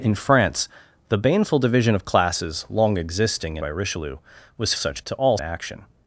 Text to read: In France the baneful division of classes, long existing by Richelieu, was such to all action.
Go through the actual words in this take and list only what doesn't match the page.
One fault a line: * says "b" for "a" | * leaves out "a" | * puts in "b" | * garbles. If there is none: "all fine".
all fine